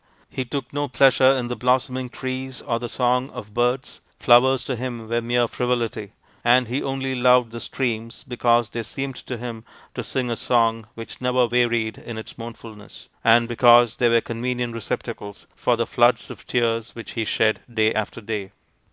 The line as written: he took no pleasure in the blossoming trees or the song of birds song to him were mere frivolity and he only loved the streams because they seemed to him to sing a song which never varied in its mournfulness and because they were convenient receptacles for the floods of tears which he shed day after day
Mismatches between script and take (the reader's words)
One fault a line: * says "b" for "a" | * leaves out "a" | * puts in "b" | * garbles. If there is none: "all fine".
* says "flowers" for "song"